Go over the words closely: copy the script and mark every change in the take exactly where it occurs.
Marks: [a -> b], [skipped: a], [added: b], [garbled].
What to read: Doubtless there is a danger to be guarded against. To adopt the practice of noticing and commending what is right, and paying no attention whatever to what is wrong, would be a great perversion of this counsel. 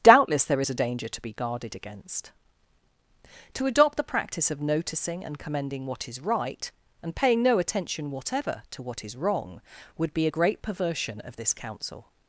Doubtless there is a danger to be guarded against. To adopt the practice of noticing and commending what is right, and paying no attention whatever to what is wrong, would be a great perversion of this counsel.